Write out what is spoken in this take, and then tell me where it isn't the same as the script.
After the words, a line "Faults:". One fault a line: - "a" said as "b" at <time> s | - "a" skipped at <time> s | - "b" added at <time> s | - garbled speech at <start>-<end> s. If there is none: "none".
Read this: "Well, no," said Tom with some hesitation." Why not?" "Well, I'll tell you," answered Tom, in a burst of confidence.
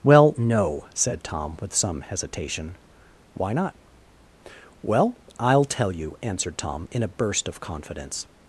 "Well, no," said Tom with some hesitation." Why not?" "Well, I'll tell you," answered Tom, in a burst of confidence.
Faults:
none